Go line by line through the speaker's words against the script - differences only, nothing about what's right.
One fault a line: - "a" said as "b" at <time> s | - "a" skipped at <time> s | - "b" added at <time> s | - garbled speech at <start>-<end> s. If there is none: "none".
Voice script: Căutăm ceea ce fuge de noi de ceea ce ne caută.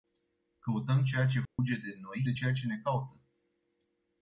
none